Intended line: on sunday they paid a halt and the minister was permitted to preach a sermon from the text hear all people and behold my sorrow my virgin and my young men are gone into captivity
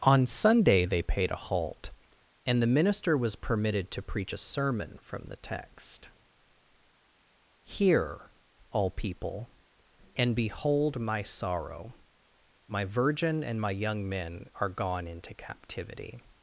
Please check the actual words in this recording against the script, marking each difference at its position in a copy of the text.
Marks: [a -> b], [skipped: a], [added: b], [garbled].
on sunday they paid a halt and the minister was permitted to preach a sermon from the text hear all people and behold my sorrow my virgin and my young men are gone into captivity